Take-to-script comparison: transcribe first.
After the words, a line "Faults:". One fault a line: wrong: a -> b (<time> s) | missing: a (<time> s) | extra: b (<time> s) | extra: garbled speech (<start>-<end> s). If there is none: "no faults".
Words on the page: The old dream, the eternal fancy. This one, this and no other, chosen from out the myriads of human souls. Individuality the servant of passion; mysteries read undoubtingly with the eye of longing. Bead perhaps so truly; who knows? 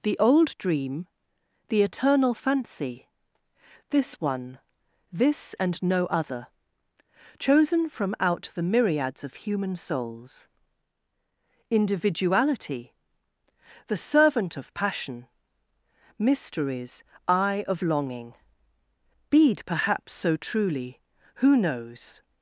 The old dream, the eternal fancy. This one, this and no other, chosen from out the myriads of human souls. Individuality the servant of passion; mysteries eye of longing. Bead perhaps so truly; who knows?
Faults:
missing: read undoubtingly with the (17.0 s)